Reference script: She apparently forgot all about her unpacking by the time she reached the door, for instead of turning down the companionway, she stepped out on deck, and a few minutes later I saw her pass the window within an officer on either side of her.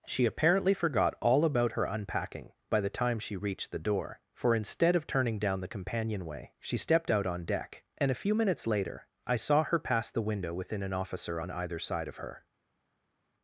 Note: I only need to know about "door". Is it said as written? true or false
true